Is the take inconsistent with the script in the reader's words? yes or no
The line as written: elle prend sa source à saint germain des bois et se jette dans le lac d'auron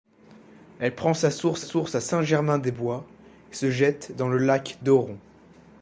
yes